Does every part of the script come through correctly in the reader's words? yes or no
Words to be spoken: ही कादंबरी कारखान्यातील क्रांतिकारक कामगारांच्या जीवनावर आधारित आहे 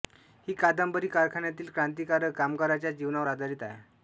yes